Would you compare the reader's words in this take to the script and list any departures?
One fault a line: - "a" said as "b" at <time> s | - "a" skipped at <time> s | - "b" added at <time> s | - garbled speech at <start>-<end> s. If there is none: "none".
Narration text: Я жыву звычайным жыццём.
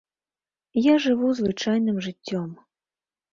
none